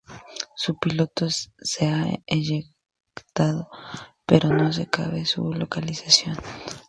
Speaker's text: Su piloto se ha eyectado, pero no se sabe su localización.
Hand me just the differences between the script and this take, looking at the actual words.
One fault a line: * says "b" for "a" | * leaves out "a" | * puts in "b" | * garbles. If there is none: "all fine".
all fine